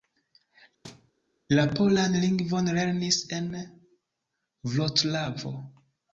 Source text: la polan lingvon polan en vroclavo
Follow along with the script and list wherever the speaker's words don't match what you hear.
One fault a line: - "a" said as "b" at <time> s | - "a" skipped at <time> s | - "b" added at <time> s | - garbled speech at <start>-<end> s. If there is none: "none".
- "polan" said as "lernis" at 2.8 s